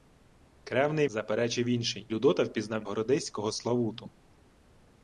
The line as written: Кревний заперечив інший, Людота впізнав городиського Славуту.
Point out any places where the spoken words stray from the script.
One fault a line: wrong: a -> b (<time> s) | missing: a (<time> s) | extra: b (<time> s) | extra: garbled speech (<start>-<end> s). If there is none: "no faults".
no faults